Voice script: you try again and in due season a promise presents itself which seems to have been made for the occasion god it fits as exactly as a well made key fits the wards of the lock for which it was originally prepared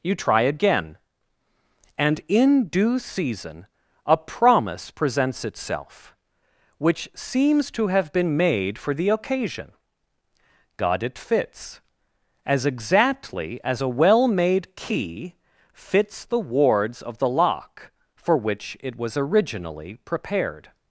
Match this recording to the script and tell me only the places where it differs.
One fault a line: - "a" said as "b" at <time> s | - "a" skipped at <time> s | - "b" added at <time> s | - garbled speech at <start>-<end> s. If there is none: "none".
none